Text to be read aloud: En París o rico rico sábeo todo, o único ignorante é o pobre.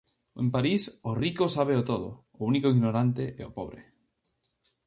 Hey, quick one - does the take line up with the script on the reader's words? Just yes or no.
no